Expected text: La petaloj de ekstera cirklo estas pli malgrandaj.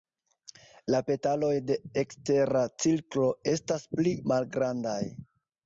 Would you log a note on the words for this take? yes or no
no